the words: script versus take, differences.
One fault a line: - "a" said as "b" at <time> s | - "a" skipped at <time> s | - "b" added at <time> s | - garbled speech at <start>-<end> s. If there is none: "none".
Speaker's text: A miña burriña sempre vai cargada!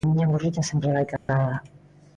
none